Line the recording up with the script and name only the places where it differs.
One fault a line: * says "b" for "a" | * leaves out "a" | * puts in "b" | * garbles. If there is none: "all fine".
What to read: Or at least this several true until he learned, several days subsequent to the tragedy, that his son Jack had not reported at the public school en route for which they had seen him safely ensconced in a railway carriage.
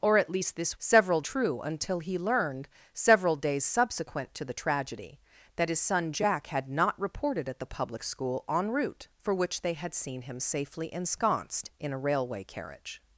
all fine